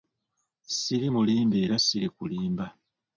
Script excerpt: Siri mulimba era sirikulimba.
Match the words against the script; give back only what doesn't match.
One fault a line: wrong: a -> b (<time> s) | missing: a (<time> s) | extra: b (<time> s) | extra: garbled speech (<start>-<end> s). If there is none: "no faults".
no faults